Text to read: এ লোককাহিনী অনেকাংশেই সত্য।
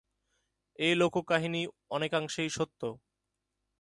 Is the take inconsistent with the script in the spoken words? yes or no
no